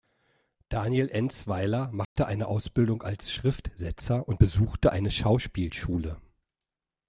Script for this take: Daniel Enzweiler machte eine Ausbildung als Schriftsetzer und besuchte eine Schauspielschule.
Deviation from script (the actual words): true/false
false